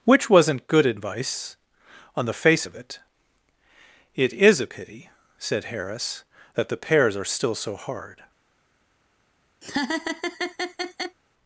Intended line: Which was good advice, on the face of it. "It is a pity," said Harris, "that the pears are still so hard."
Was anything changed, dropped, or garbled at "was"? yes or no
yes